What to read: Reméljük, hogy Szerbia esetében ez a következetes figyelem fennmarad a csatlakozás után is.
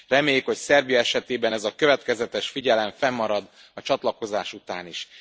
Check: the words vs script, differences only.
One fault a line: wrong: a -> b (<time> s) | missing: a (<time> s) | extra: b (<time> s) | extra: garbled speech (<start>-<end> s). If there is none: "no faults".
no faults